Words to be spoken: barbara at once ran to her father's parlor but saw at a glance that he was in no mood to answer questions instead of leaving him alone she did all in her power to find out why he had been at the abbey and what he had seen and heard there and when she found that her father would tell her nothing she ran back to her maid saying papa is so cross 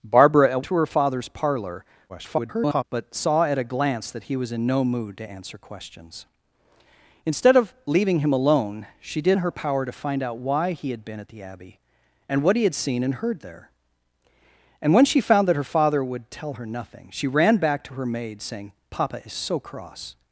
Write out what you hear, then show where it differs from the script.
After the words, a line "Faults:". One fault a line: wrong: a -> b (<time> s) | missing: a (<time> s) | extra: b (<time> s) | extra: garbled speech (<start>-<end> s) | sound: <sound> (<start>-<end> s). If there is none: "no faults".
barbara at to her father's parlor [garbled] but saw at a glance that he was in no mood to answer questions instead of leaving him alone she did in her power to find out why he had been at the abbey and what he had seen and heard there and when she found that her father would tell her nothing she ran back to her maid saying papa is so cross
Faults:
missing: once ran (0.6 s)
extra: garbled speech (2.1-2.8 s)
missing: all (9.4 s)